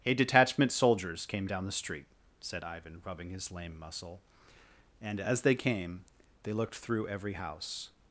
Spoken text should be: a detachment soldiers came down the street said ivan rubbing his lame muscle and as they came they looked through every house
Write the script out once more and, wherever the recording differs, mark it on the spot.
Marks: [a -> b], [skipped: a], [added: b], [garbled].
a detachment soldiers came down the street said ivan rubbing his lame muscle and as they came they looked through every house